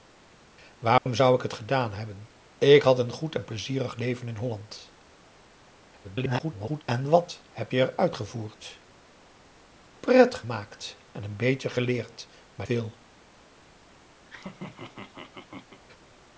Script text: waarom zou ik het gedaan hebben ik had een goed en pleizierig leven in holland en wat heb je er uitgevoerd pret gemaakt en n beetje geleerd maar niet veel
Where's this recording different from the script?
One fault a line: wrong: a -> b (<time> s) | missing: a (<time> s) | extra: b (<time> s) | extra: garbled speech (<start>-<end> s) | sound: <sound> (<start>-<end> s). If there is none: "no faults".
sound: dropout (1.0-1.1 s)
extra: garbled speech (6.0-6.8 s)
missing: niet (12.7 s)
sound: laugh (14.3-15.8 s)